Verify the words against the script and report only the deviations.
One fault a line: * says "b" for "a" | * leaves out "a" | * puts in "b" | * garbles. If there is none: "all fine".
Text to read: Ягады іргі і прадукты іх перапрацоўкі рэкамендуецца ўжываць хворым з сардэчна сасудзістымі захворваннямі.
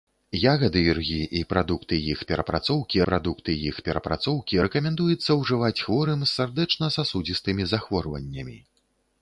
* puts in "прадукты іх перапрацоўкі"